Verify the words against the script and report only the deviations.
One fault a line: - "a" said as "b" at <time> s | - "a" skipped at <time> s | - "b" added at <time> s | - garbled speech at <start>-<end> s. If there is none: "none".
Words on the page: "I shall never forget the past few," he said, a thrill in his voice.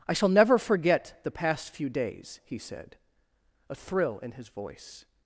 - "days" added at 1.9 s